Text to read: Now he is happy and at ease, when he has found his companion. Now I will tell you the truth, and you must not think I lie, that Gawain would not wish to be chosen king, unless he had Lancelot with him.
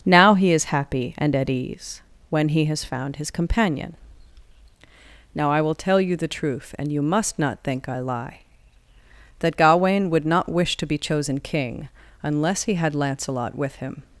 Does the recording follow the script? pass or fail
pass